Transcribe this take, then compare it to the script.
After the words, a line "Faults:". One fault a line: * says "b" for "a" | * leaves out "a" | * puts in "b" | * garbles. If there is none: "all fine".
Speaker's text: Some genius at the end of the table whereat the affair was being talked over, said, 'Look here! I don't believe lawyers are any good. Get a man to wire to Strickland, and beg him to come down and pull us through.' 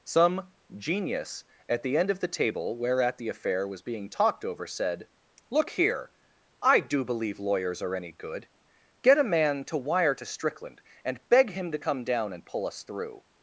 Some genius at the end of the table whereat the affair was being talked over, said, 'Look here! I do believe lawyers are any good. Get a man to wire to Strickland, and beg him to come down and pull us through.'
Faults:
* says "do" for "don't"